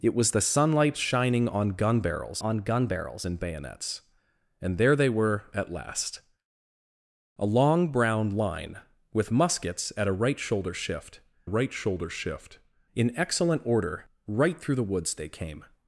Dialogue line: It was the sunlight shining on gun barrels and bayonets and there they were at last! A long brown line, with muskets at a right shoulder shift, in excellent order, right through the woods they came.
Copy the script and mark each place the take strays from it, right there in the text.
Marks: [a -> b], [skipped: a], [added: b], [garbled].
It was the sunlight shining on gun barrels [added: on gun barrels] and bayonets and there they were at last! A long brown line, with muskets at a right shoulder shift, [added: right shoulder shift] in excellent order, right through the woods they came.